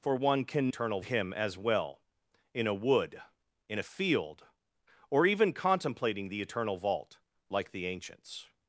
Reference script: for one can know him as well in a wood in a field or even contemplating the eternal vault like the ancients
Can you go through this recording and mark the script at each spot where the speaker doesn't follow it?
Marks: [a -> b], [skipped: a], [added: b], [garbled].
for one can [know -> eternal] him as well in a wood in a field or even contemplating the eternal vault like the ancients